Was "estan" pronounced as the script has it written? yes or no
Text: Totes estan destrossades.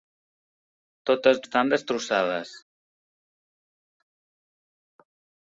yes